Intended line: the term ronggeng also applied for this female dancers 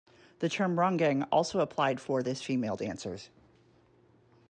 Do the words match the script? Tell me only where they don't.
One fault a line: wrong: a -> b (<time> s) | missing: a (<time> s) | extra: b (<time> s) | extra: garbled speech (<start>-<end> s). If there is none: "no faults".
no faults